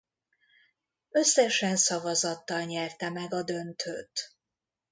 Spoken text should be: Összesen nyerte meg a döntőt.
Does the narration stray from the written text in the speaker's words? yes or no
yes